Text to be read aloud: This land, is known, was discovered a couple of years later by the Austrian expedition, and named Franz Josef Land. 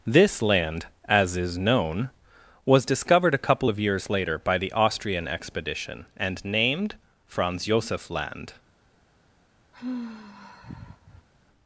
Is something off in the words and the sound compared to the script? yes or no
yes